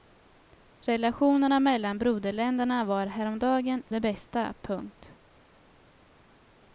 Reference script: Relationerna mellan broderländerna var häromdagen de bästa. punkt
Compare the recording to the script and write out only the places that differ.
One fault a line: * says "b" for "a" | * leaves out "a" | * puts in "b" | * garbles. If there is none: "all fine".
all fine